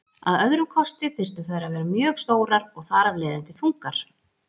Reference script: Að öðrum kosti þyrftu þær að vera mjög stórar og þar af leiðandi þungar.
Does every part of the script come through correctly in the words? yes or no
yes